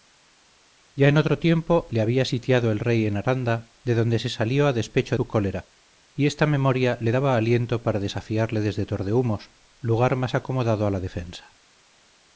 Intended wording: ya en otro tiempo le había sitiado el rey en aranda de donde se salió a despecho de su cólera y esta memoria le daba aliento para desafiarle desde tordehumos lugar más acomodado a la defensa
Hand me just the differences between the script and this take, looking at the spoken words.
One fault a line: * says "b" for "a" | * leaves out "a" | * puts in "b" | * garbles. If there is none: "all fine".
* leaves out "de"